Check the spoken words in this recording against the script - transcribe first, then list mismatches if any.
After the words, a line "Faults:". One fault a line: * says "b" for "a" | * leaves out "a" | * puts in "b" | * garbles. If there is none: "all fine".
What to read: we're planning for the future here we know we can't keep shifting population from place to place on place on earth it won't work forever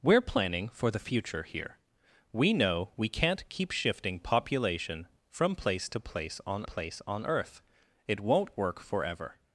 we're planning for the future here we know we can't keep shifting population from place to place on place on earth it won't work forever
Faults:
all fine